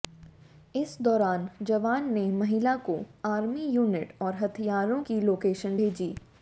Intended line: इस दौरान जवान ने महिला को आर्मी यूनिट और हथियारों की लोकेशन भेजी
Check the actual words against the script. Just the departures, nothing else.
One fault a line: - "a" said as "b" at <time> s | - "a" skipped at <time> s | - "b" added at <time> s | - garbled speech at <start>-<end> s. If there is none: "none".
none